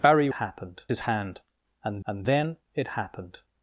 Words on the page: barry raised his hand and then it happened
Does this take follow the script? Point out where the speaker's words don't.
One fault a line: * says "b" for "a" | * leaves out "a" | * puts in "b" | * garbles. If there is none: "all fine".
* says "happened" for "raised"
* puts in "and"